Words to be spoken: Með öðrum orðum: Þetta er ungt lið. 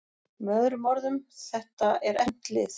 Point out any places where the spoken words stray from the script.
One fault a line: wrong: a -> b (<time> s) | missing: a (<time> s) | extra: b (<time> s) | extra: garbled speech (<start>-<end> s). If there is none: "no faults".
no faults